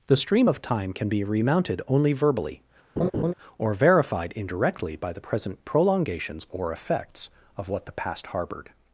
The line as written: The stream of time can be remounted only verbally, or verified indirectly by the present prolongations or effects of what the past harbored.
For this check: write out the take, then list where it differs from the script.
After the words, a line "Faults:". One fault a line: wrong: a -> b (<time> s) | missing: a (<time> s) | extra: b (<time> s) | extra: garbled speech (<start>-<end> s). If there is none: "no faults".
The stream of time can be remounted only verbally, or verified indirectly by the present prolongations or effects of what the past harbored.
Faults:
no faults